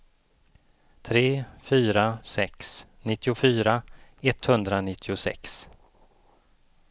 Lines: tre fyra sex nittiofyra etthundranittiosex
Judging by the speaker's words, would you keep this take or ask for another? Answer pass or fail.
pass